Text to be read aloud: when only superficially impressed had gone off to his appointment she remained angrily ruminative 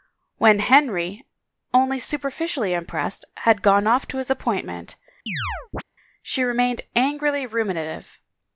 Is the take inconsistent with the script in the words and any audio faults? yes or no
yes